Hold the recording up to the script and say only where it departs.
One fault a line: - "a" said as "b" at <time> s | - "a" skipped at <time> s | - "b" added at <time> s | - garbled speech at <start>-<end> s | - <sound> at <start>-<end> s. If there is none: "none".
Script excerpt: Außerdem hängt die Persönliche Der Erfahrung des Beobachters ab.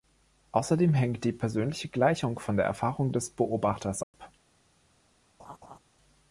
- "Gleichung von" added at 1.9 s
- dropout at 4.0-4.1 s
- laugh at 5.4-5.8 s